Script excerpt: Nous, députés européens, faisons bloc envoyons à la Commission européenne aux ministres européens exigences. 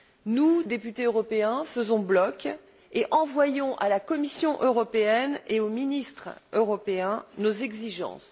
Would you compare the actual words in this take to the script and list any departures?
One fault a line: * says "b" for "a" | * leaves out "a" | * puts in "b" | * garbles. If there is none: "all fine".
* puts in "et"
* puts in "et"
* puts in "nos"